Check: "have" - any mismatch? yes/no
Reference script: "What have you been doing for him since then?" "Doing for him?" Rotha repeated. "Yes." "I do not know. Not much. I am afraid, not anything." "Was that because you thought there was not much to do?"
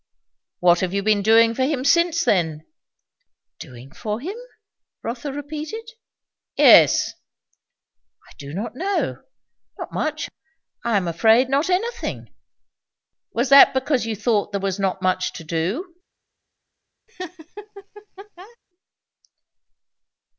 no